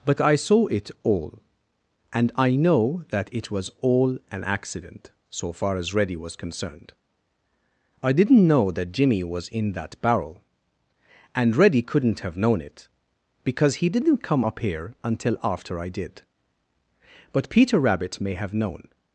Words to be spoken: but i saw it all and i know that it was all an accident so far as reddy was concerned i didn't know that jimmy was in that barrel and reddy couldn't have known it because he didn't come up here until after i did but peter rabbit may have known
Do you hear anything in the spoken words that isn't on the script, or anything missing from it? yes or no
no